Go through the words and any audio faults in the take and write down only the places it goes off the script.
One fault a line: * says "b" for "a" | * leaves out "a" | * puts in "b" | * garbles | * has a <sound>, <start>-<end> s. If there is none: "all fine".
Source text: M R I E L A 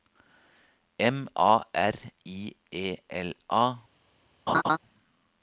* puts in "A"
* has a laugh, 4.5-4.8 s